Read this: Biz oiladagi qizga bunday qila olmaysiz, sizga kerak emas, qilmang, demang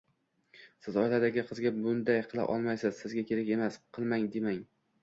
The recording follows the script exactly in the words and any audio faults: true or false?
false